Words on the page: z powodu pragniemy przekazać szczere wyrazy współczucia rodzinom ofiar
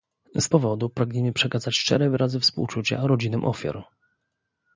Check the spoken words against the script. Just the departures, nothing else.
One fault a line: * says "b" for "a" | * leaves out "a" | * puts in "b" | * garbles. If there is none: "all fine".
all fine